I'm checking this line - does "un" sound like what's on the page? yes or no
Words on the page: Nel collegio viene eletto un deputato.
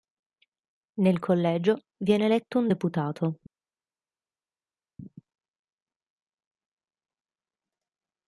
yes